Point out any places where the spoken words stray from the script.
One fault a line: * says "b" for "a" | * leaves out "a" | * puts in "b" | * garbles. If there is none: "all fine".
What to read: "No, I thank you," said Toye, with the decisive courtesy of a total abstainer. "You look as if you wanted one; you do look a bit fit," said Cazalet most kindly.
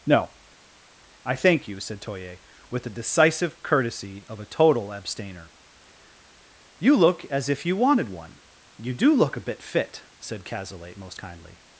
all fine